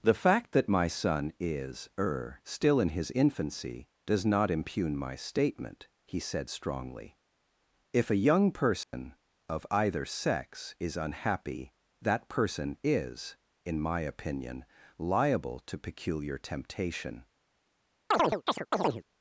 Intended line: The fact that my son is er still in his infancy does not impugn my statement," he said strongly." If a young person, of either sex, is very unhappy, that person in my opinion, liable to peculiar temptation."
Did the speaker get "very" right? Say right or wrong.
wrong